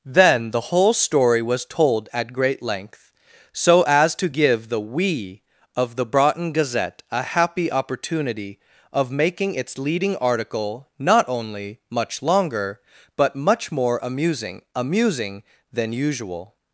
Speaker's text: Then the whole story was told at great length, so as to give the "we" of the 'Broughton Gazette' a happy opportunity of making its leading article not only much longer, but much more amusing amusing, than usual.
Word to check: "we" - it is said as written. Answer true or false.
true